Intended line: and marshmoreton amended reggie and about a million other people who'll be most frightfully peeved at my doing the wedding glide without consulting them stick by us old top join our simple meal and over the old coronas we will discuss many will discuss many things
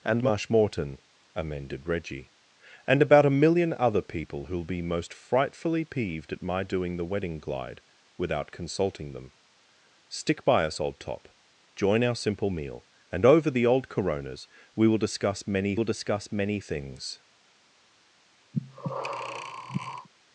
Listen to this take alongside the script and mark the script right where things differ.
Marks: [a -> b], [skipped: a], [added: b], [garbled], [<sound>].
and marshmoreton amended reggie and about a million other people who'll be most frightfully peeved at my doing the wedding glide without consulting them stick by us old top join our simple meal and over the old coronas we will discuss many will discuss many things [breath]